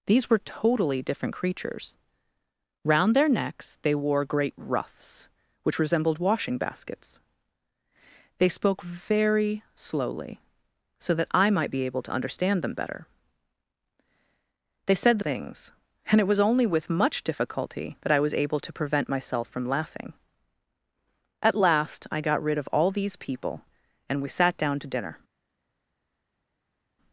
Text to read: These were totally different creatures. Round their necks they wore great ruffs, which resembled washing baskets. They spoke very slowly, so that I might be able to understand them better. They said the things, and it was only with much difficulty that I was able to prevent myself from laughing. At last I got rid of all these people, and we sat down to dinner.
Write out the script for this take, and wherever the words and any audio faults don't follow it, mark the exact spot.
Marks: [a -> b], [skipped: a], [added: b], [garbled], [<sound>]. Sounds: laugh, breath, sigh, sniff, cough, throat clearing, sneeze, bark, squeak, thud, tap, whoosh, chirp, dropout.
These were totally different creatures. Round their necks they wore great ruffs, which resembled washing baskets. They spoke very slowly, so that I might be able to understand them better. They said the things, and it was only with much difficulty that I was able to prevent myself from laughing. At last I got rid of all these people, and we sat down to dinner.